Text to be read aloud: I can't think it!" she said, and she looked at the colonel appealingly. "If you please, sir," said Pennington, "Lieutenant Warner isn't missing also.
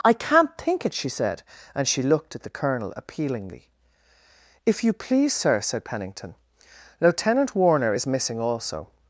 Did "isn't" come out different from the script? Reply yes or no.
yes